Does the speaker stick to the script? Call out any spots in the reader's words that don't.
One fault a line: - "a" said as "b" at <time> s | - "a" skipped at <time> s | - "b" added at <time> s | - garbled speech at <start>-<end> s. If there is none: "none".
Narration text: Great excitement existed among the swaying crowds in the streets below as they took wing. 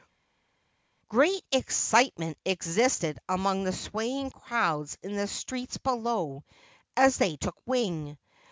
none